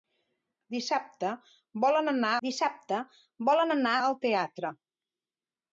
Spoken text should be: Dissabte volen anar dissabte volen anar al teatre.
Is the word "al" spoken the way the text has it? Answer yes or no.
yes